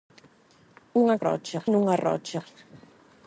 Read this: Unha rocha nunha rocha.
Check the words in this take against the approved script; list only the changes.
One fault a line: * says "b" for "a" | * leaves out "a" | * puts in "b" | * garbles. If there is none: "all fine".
all fine